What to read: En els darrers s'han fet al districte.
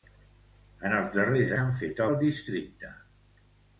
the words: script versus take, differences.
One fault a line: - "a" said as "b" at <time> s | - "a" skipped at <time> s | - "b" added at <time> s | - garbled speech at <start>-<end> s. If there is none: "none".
none